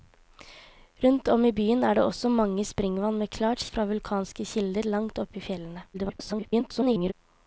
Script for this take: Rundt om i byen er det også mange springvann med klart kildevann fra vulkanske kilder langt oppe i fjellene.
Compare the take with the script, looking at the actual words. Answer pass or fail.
fail